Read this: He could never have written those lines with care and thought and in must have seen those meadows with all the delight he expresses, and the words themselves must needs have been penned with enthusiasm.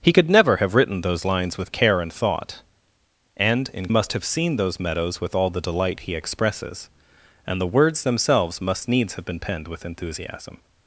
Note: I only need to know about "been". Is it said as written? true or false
true